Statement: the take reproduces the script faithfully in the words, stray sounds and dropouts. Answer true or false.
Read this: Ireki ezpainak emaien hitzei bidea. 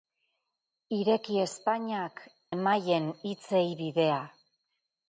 true